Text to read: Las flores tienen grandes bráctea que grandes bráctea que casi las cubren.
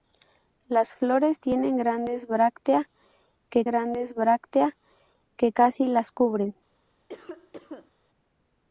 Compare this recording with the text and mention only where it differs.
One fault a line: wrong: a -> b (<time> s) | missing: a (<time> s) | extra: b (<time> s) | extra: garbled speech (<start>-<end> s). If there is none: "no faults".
no faults